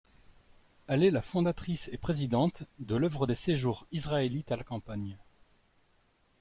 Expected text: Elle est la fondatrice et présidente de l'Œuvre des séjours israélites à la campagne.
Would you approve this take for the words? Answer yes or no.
yes